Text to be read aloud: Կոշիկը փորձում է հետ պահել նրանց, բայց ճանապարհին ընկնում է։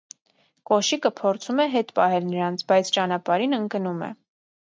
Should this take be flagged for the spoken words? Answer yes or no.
no